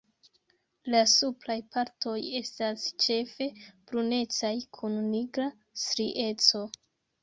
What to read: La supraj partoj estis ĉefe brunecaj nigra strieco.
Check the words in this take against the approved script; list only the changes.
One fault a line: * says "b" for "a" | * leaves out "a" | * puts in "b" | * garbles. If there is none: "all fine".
* says "estas" for "estis"
* puts in "kun"